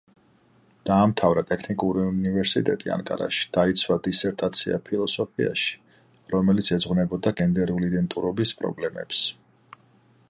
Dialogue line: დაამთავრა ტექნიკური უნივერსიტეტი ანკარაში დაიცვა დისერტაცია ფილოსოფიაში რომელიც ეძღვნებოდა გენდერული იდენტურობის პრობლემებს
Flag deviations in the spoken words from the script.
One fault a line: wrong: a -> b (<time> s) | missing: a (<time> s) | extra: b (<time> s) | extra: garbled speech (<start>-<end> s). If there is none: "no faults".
no faults